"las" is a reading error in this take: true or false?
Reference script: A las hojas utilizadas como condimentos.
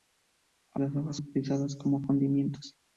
false